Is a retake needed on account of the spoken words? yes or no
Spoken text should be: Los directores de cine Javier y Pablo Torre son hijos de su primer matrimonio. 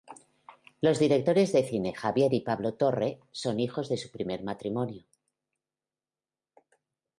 no